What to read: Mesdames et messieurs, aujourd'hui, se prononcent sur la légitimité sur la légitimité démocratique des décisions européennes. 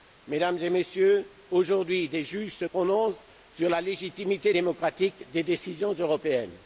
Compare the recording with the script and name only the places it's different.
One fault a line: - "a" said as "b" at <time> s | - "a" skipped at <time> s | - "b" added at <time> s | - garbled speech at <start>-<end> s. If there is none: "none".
- "des juges" added at 2.1 s
- "sur la légitimité" skipped at 4.5 s